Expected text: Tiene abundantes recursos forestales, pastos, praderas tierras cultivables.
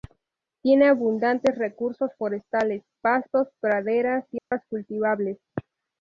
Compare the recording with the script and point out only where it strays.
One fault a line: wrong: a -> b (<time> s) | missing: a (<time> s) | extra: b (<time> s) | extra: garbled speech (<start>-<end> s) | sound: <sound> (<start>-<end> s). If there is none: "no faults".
sound: dropout (4.4-4.5 s)